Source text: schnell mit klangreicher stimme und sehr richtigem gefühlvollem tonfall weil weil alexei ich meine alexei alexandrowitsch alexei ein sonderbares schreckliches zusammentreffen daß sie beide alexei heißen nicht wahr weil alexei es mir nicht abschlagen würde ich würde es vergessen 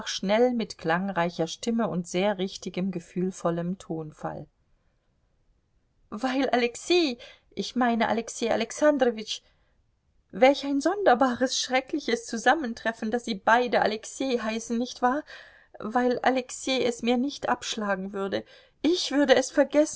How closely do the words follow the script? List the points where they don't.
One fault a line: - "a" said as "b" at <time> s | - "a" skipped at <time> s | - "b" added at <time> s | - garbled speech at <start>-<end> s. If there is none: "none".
- "weil" skipped at 6.5 s
- "alexei" said as "welch" at 10.3 s